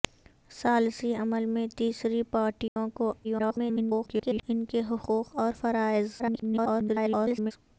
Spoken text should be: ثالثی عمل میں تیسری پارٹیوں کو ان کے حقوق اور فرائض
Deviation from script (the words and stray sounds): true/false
true